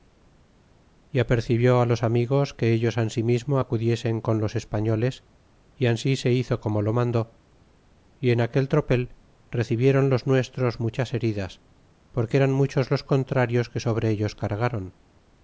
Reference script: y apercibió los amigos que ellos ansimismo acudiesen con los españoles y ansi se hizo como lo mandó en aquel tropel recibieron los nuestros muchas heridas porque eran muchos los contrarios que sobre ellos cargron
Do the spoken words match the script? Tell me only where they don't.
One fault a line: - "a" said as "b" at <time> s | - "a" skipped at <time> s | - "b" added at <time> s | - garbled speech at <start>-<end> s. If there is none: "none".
- "y" added at 8.2 s